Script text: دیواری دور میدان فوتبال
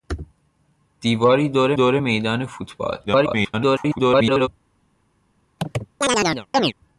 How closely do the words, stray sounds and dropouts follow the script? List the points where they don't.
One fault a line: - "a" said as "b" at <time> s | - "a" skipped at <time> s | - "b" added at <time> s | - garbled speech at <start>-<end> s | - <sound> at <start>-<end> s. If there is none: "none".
- "دور" added at 1.7 s
- garbled speech at 3.1-4.5 s
- chirp at 5.6-6.7 s